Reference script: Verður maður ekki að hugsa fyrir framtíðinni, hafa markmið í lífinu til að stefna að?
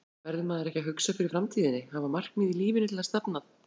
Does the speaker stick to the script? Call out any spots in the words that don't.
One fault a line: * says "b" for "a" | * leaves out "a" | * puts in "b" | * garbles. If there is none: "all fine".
all fine